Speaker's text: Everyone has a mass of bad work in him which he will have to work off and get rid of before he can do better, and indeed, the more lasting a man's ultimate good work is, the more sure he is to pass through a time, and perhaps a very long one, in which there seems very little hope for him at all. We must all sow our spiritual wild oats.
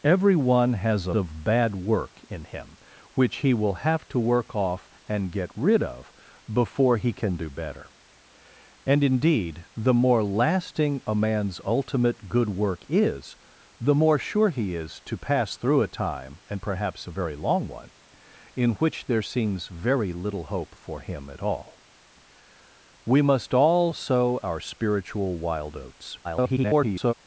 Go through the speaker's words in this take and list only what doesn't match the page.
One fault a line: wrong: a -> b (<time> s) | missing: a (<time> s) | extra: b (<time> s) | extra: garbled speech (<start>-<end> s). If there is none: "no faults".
missing: mass (1.1 s)
extra: garbled speech (26.2-27.1 s)